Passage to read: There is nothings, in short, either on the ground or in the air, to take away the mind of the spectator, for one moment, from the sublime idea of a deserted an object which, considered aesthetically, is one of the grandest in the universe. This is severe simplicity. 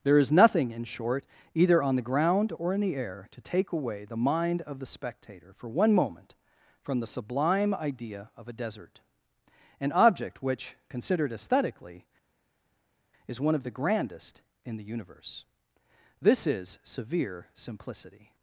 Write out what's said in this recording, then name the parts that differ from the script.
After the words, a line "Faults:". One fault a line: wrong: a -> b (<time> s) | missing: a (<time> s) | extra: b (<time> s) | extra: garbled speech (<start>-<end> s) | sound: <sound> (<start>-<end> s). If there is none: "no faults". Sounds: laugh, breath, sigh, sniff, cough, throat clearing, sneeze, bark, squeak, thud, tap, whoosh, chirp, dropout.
There is nothing, in short, either on the ground or in the air, to take away the mind of the spectator, for one moment, from the sublime idea of a desert an object which, considered aesthetically, is one of the grandest in the universe. This is severe simplicity.
Faults:
wrong: nothings -> nothing (0.3 s)
wrong: deserted -> desert (8.5 s)